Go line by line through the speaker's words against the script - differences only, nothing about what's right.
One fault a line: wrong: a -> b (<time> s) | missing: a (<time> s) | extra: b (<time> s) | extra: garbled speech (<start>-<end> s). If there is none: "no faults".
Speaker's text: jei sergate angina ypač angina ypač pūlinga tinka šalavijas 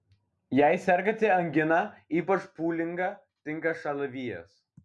missing: angina ypač (2.5 s)